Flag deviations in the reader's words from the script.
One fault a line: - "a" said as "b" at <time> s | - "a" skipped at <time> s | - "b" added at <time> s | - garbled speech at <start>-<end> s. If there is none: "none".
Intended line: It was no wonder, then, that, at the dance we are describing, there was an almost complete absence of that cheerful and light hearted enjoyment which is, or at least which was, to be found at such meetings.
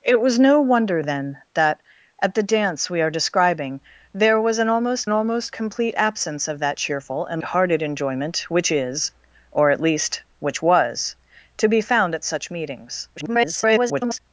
- "almost" added at 5.1 s
- "light" skipped at 7.4 s
- garbled speech at 13.2-14.2 s